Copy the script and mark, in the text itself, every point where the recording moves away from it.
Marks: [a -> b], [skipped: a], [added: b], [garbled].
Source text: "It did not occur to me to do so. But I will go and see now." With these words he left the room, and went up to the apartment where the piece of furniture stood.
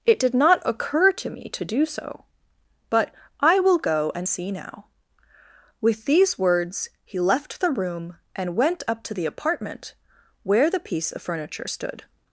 "It did not occur to me to do so. But I will go and see now." With these words he left the room, and went up to the apartment where the piece of furniture stood.